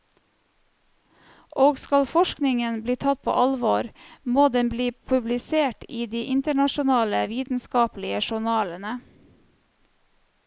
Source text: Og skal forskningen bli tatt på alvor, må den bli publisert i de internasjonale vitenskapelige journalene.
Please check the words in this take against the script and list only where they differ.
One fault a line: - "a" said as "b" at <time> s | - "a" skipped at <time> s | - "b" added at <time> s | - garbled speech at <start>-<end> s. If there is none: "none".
none